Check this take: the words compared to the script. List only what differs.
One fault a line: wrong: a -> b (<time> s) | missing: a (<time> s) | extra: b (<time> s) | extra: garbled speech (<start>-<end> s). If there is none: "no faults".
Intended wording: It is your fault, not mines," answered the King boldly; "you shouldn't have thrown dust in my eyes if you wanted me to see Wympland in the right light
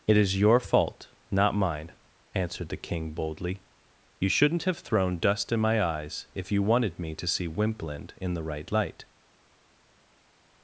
wrong: mines -> mine (1.6 s)